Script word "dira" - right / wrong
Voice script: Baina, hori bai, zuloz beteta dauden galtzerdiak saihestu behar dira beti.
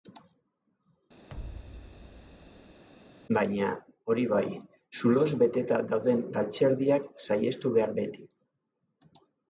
wrong